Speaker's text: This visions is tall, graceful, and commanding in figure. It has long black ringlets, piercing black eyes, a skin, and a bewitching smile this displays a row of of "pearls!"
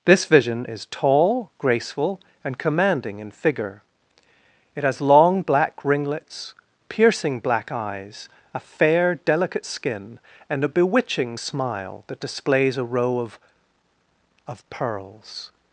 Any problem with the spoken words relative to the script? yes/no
yes